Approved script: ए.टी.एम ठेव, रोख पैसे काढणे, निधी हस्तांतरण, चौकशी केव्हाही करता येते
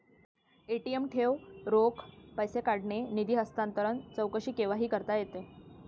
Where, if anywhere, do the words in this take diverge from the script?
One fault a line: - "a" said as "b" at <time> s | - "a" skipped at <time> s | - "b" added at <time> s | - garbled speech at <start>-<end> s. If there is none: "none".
none